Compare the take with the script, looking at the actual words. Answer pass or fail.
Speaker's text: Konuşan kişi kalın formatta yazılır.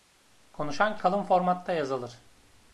fail